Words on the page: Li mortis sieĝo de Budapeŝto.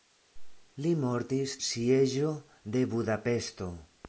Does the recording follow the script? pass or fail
pass